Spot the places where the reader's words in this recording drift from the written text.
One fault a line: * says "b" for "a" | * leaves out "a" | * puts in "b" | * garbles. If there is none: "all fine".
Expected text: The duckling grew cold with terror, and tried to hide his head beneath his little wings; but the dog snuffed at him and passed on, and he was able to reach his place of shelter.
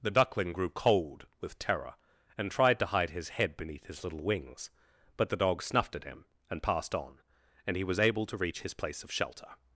all fine